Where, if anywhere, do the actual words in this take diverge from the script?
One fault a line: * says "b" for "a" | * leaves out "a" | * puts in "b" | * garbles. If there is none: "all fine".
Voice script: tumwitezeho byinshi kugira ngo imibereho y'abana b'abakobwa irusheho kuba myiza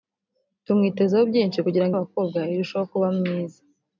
* leaves out "imibereho y'abana"